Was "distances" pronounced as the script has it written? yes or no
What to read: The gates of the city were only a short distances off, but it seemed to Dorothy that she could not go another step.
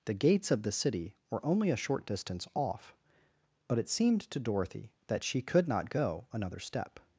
no